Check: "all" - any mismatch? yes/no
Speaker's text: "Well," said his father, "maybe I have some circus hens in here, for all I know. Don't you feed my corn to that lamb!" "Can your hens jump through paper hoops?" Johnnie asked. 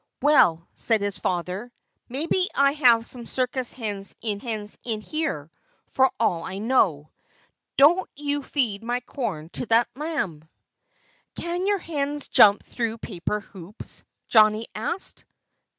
no